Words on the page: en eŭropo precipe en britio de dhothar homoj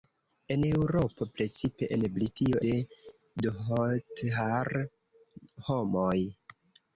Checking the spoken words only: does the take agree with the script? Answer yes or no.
yes